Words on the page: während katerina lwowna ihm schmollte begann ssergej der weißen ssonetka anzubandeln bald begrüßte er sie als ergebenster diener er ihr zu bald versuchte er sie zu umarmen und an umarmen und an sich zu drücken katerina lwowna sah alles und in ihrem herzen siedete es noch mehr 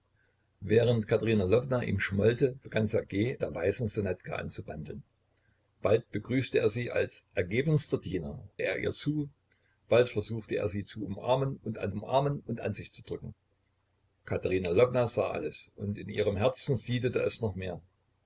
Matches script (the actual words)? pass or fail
pass